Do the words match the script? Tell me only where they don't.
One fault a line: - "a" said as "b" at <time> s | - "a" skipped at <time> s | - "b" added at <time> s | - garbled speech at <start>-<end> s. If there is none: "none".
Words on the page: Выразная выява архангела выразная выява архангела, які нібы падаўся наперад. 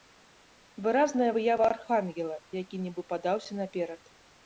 - "выразная выява архангела" skipped at 2.4 s